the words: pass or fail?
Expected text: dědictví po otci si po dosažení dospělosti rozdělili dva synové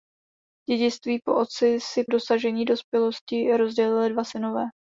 fail